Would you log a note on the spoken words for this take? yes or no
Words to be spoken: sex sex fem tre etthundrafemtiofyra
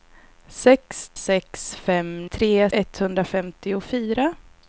no